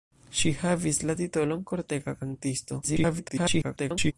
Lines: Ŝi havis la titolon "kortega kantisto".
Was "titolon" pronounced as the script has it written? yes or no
yes